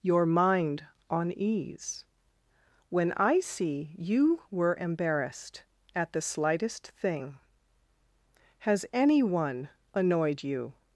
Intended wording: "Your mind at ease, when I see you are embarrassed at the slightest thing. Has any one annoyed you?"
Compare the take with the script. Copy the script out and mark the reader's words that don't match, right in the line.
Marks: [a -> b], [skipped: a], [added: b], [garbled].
"Your mind [at -> on] ease, when I see you [are -> were] embarrassed at the slightest thing. Has any one annoyed you?"